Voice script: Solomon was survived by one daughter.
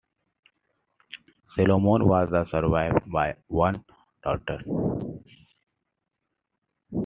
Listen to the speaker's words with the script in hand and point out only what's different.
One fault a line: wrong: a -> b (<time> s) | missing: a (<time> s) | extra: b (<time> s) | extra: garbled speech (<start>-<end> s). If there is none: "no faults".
no faults